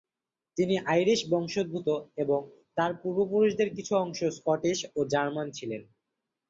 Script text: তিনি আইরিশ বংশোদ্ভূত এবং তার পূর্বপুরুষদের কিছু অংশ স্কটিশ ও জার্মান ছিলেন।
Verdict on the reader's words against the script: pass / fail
pass